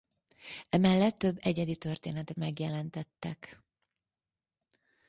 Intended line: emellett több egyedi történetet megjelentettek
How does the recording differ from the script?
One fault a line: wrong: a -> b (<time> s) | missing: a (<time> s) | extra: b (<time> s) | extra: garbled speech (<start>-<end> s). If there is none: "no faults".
no faults